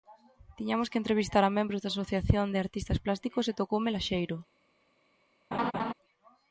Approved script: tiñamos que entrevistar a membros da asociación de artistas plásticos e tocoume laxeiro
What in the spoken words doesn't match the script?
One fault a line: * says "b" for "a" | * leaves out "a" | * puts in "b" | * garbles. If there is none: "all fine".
all fine